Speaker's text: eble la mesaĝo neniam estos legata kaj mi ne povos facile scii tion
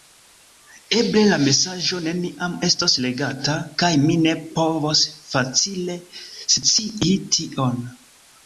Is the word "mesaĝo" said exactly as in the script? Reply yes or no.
yes